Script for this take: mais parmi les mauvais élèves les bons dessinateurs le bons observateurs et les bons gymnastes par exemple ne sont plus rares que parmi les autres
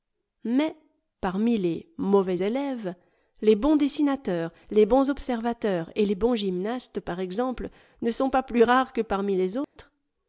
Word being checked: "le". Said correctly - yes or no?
no